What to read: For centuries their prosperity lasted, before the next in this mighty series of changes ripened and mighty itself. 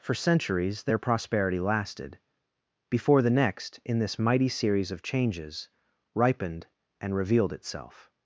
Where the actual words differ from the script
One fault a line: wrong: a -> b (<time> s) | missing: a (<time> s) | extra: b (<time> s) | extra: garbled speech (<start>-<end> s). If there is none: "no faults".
wrong: mighty -> revealed (7.2 s)